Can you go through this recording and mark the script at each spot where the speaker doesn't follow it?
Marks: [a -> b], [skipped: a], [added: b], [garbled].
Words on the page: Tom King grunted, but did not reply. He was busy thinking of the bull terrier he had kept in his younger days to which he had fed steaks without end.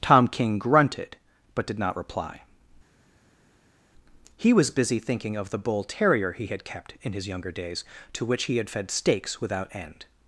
Tom King grunted, but did not reply. He was busy thinking of the bull terrier he had kept in his younger days to which he had fed steaks without end.